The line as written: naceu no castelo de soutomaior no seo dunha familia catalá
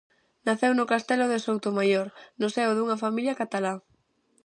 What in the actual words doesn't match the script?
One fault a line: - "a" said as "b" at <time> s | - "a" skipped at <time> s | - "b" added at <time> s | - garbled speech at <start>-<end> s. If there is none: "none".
none